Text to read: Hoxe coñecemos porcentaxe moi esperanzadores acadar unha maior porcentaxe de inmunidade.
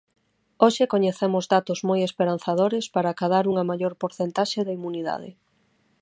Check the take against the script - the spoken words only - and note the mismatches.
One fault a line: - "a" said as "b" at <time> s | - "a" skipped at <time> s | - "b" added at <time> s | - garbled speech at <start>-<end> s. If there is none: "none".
- "porcentaxe" said as "datos" at 1.6 s
- "para" added at 3.0 s